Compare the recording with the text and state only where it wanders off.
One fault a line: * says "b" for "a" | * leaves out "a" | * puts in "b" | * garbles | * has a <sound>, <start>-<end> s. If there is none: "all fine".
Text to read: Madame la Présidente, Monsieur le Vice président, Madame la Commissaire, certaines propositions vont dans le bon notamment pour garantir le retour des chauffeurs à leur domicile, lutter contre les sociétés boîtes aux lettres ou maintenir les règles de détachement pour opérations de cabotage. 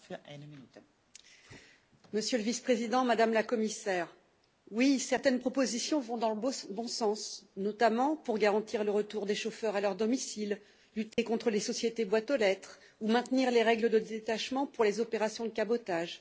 * puts in "oui"
* puts in "sens"
* has a dropout, 11.1-11.2 s
* puts in "les"